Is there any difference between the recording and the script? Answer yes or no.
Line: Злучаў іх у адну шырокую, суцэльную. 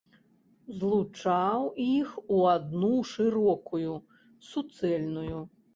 no